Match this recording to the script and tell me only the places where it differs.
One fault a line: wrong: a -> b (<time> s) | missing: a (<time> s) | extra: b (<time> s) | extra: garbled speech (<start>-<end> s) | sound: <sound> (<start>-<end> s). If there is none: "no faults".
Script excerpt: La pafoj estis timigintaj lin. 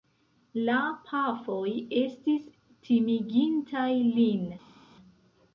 no faults